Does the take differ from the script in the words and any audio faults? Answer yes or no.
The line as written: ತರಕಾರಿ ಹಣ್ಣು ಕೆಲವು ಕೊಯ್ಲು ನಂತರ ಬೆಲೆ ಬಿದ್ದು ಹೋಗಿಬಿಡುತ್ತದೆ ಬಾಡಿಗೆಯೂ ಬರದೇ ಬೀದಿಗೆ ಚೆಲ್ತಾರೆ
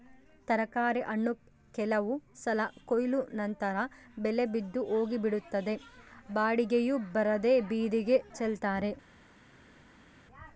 yes